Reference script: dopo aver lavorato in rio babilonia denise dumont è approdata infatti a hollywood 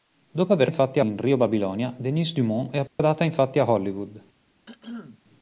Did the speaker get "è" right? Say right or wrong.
right